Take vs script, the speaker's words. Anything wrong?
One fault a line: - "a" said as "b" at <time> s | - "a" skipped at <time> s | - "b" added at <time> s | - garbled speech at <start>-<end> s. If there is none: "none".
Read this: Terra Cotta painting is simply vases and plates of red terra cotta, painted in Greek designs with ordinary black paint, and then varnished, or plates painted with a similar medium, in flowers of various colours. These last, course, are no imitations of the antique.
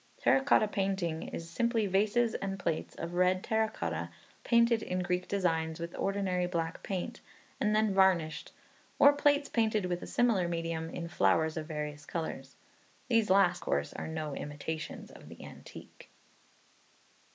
none